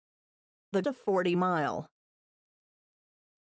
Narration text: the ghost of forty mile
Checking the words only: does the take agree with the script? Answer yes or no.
no